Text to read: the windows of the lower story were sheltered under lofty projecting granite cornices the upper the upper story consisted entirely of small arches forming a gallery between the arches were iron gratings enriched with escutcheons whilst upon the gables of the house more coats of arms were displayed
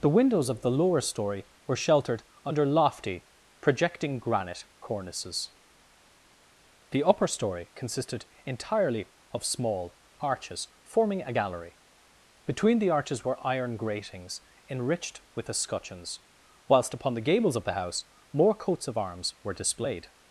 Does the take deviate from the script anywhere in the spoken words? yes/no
yes